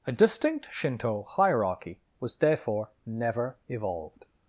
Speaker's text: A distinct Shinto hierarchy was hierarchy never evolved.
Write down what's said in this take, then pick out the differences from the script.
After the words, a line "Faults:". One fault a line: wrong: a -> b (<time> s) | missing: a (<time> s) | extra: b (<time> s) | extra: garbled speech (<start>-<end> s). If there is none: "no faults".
A distinct Shinto hierarchy was therefore never evolved.
Faults:
wrong: hierarchy -> therefore (2.4 s)